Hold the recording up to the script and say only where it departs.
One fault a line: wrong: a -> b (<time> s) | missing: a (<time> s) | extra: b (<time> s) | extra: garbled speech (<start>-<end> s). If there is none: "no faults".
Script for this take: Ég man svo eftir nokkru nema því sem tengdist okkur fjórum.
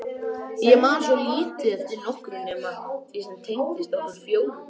extra: lítið (1.2 s)